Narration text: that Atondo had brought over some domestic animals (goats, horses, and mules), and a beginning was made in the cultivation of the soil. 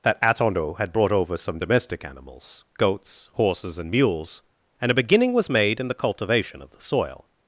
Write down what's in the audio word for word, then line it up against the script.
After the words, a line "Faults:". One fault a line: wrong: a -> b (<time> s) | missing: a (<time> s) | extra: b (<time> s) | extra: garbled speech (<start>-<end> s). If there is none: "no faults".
that Atondo had brought over some domestic animals (goats, horses, and mules), and a beginning was made in the cultivation of the soil.
Faults:
no faults